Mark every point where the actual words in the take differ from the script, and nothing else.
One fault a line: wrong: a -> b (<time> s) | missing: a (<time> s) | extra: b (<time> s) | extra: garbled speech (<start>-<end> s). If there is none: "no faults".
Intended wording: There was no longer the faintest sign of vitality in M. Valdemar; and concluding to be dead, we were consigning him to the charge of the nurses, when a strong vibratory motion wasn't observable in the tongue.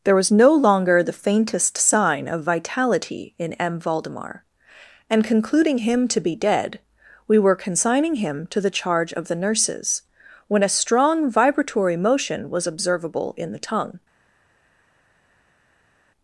extra: him (5.8 s)
wrong: wasn't -> was (12.5 s)